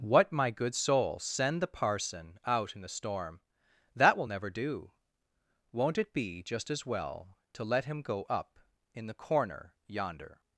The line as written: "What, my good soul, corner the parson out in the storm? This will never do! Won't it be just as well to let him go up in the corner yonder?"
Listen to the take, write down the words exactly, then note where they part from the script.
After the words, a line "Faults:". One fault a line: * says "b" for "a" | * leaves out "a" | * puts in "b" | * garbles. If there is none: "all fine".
"What, my good soul, send the parson out in the storm? That will never do! Won't it be just as well to let him go up in the corner yonder?"
Faults:
* says "send" for "corner"
* says "That" for "This"